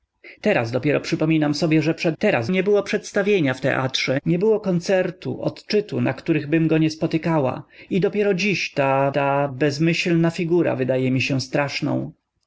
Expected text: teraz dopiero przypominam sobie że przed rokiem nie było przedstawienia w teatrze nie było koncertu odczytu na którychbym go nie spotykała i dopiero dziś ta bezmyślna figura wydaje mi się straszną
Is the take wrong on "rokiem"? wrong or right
wrong